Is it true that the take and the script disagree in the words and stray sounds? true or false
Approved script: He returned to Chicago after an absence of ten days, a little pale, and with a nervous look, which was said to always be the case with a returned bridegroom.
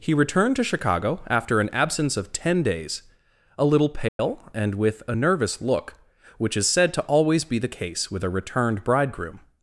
true